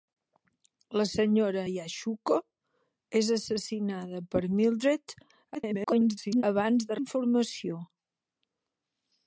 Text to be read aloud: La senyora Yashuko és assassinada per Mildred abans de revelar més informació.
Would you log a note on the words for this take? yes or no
yes